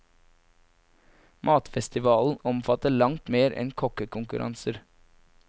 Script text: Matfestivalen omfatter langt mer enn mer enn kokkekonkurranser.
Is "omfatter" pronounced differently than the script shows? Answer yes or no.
no